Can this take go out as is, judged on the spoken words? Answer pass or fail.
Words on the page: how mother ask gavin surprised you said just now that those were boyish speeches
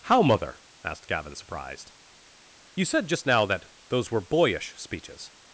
fail